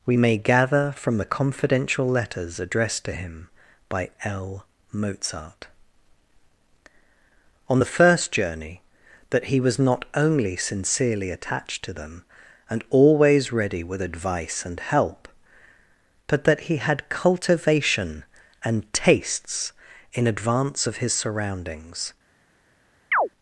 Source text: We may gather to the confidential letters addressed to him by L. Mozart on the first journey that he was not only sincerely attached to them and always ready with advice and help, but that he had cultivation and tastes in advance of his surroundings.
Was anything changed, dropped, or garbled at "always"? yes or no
no